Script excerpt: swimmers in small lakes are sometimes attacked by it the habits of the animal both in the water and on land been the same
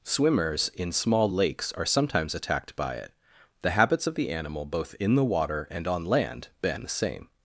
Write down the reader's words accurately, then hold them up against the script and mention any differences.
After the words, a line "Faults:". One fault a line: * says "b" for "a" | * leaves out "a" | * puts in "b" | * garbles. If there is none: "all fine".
swimmers in small lakes are sometimes attacked by it the habits of the animal both in the water and on land been the same
Faults:
all fine